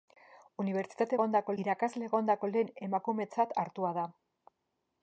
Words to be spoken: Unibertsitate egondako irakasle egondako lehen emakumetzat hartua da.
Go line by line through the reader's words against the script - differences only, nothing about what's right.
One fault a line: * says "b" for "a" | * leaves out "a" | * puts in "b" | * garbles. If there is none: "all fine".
all fine